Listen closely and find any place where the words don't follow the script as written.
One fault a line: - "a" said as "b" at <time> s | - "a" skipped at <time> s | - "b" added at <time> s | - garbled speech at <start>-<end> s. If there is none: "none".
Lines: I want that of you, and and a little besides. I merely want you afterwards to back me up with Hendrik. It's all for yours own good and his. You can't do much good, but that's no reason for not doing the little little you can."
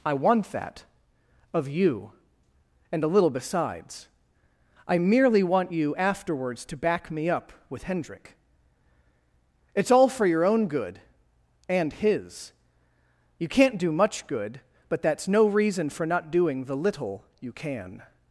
- "and" skipped at 3.0 s
- "yours" said as "your" at 10.3 s
- "little" skipped at 17.2 s